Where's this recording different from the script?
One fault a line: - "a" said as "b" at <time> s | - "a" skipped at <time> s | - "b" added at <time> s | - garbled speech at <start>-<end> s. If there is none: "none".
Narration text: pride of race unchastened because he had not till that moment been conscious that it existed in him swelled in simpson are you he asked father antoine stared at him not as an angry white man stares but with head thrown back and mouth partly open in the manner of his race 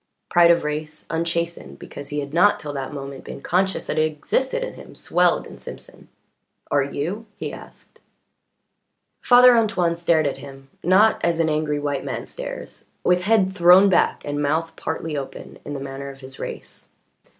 - "but" skipped at 12.8 s